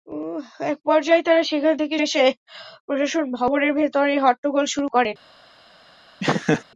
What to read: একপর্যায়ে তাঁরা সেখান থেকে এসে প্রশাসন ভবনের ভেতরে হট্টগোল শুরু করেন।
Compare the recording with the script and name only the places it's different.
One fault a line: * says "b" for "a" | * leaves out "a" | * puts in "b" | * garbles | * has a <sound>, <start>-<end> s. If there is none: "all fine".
* has a laugh, 6.2-6.6 s